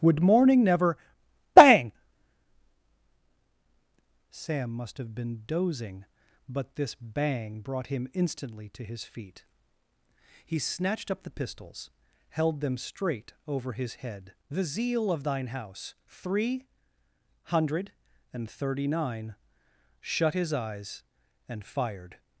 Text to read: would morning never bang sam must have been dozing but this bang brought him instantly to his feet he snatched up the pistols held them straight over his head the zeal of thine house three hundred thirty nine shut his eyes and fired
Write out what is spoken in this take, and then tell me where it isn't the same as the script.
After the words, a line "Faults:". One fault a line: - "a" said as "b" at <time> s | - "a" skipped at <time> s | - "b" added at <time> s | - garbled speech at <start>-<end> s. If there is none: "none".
would morning never bang sam must have been dozing but this bang brought him instantly to his feet he snatched up the pistols held them straight over his head the zeal of thine house three hundred and thirty nine shut his eyes and fired
Faults:
- "and" added at 18.3 s